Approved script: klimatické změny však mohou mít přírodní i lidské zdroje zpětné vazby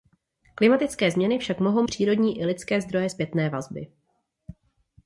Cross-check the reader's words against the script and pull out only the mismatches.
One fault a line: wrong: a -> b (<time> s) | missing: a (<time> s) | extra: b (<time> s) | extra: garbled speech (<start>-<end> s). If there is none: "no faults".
missing: mít (1.8 s)